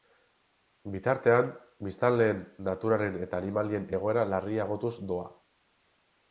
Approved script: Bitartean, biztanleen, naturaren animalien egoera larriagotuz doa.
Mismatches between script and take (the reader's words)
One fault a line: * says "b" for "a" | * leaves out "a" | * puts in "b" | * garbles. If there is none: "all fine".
* puts in "eta"